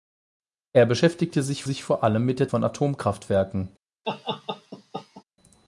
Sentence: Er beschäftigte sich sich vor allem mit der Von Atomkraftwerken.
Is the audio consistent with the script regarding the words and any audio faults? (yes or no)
no